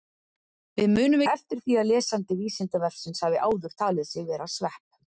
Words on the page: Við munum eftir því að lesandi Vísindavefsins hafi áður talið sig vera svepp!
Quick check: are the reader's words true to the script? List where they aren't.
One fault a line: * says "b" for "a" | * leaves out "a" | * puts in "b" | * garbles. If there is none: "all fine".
all fine